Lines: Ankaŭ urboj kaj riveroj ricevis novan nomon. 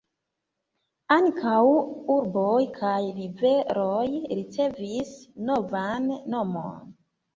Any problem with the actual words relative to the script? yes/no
no